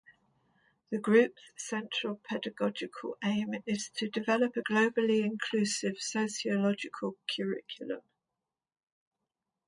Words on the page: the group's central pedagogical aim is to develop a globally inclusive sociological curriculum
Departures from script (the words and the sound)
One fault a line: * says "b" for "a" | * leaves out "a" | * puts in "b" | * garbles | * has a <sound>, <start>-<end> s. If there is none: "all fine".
all fine